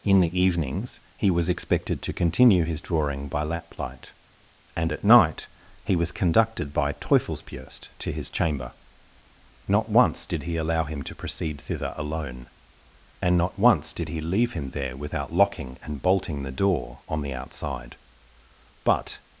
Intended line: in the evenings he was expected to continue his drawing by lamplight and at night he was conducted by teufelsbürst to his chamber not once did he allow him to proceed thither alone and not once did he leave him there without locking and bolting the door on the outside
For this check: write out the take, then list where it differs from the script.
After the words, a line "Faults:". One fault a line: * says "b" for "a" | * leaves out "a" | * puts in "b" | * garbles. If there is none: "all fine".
in the evenings he was expected to continue his drawing by lamplight and at night he was conducted by teufelsbürst to his chamber not once did he allow him to proceed thither alone and not once did he leave him there without locking and bolting the door on the outside but
Faults:
* puts in "but"